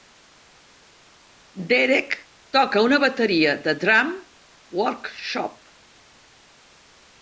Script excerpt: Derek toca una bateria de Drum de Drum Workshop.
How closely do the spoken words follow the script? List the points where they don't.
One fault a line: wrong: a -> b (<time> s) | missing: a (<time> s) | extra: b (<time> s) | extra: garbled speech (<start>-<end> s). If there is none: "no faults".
missing: de Drum (4.2 s)